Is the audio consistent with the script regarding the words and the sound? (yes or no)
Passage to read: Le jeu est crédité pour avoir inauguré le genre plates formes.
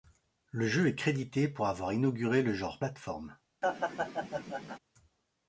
no